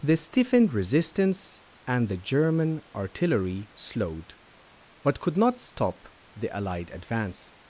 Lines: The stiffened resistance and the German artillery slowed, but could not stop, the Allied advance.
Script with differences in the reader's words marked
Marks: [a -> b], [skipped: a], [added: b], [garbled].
The stiffened resistance and the German artillery slowed, but could not stop, the Allied advance.